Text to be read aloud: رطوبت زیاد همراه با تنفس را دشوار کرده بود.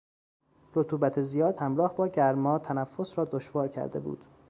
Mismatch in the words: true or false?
true